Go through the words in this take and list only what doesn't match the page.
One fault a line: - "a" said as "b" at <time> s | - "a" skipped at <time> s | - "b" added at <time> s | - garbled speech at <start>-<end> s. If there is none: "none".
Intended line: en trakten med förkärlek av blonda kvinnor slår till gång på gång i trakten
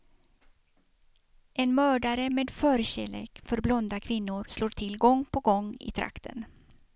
- "trakten" said as "mördare" at 1.8 s
- "av" said as "för" at 3.4 s